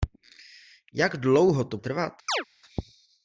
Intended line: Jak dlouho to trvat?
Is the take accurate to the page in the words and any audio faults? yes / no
no